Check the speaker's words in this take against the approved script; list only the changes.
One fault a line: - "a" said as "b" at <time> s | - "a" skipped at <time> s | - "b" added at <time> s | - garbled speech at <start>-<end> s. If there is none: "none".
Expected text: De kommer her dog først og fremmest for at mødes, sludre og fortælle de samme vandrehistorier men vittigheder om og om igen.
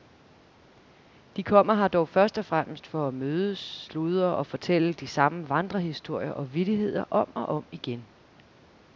- "men" said as "og" at 6.3 s